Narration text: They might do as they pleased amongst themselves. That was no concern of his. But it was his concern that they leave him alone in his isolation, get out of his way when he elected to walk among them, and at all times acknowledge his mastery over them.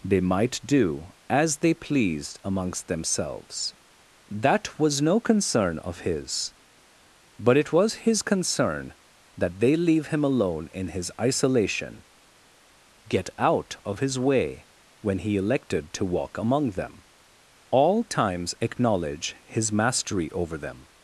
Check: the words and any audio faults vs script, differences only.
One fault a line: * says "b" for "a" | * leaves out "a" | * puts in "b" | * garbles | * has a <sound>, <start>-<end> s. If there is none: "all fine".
* leaves out "and at"